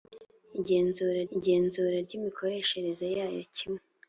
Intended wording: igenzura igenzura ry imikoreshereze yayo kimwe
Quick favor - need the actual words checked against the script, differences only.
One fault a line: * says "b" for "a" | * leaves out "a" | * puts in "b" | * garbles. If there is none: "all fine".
all fine